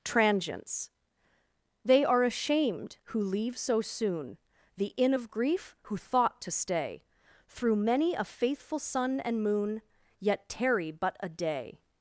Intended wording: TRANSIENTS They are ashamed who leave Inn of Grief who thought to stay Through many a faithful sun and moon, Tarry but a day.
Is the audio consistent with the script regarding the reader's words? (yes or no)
no